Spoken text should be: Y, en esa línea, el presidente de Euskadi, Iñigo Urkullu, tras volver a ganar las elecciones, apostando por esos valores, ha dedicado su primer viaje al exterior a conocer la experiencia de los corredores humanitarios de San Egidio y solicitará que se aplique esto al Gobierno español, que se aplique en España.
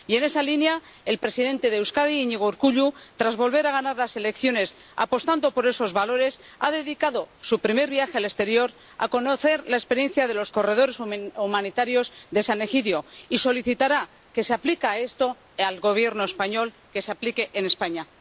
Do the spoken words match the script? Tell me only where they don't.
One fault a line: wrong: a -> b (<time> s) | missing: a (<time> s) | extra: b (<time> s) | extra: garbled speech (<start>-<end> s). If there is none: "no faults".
no faults